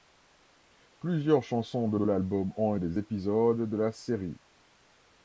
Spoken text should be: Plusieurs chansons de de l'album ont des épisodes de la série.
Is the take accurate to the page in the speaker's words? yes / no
yes